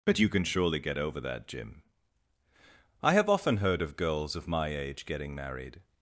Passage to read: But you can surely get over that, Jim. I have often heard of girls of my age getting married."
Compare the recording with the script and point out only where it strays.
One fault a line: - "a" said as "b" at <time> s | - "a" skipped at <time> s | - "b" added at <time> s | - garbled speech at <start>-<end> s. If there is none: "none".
none